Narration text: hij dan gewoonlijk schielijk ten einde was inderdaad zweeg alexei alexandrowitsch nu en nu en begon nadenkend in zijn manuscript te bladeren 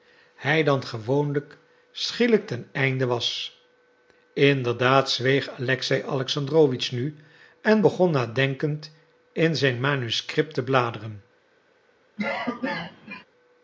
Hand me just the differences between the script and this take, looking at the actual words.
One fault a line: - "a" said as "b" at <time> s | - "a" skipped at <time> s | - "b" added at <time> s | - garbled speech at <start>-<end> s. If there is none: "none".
- "nu en" skipped at 7.8 s